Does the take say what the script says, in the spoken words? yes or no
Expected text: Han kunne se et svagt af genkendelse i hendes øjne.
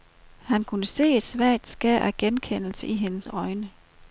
no